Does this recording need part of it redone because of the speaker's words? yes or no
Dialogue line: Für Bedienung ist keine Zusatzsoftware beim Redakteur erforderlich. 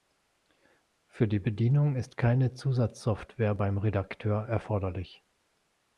yes